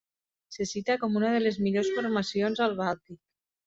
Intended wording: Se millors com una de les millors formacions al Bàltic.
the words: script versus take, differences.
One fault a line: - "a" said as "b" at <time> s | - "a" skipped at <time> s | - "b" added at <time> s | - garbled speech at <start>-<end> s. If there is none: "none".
- "millors" said as "cita" at 0.7 s